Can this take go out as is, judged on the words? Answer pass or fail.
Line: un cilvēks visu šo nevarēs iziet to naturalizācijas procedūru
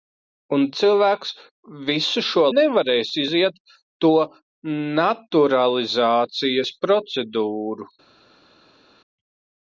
pass